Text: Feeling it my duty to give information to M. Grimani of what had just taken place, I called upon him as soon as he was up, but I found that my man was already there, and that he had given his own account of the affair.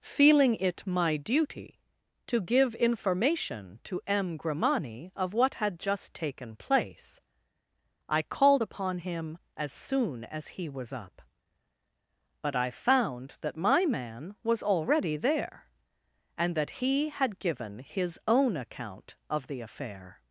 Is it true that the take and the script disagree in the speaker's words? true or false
false